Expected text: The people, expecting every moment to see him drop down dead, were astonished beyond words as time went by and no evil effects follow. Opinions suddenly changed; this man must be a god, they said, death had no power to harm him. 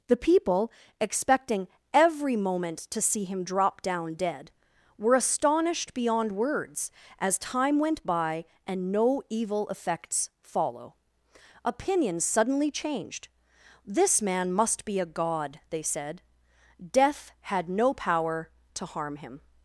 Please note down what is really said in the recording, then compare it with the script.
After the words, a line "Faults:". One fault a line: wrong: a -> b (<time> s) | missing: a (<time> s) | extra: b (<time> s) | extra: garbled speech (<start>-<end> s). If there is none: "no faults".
The people, expecting every moment to see him drop down dead, were astonished beyond words as time went by and no evil effects follow. Opinions suddenly changed; this man must be a god, they said, death had no power to harm him.
Faults:
no faults